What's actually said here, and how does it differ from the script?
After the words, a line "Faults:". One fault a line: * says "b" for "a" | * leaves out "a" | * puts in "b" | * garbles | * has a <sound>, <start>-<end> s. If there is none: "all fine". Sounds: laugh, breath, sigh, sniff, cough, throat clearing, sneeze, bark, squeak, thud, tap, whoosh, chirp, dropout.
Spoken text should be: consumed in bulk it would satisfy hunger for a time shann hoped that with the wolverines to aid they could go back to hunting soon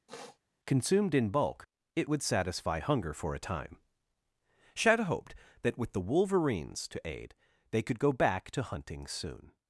consumed in bulk it would satisfy hunger for a time shadow hoped that with the wolverines to aid they could go back to hunting soon
Faults:
* has a sniff, 0.1-0.4 s
* says "shadow" for "shann"